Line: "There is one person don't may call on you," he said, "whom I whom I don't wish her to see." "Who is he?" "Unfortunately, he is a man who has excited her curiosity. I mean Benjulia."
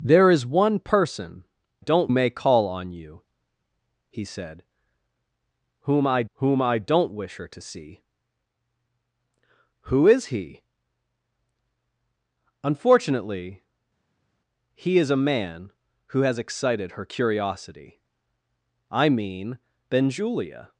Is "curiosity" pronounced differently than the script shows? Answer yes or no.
no